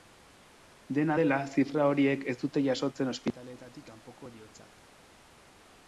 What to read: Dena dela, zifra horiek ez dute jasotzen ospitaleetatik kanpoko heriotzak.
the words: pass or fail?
pass